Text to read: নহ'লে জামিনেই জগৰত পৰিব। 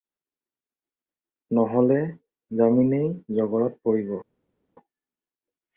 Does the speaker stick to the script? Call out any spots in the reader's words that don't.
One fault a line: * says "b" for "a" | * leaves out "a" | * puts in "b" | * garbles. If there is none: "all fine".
all fine